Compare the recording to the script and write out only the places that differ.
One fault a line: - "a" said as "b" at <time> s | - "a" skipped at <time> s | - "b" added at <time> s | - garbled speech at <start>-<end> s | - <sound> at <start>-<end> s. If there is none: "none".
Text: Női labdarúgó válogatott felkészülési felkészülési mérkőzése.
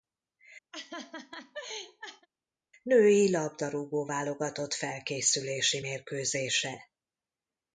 - laugh at 0.7-2.3 s
- "felkészülési" skipped at 5.8 s